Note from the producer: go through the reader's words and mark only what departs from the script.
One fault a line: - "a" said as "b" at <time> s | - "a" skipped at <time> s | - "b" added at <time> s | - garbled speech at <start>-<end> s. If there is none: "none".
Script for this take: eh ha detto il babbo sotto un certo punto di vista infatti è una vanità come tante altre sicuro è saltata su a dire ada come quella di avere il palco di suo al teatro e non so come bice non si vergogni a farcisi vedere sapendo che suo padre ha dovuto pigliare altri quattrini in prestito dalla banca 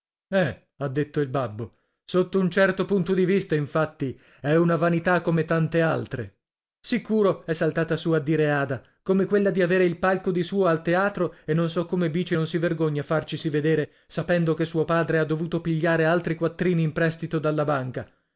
none